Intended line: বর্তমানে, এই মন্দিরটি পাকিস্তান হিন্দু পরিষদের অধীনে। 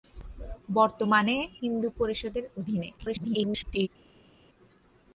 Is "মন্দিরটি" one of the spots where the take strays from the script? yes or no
yes